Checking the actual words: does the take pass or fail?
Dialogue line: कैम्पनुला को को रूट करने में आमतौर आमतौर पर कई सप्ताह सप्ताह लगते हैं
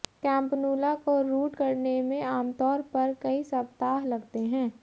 fail